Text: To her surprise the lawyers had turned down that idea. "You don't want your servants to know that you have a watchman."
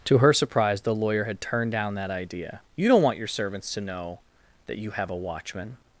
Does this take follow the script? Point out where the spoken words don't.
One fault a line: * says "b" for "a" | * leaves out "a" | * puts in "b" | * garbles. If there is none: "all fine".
* says "lawyer" for "lawyers"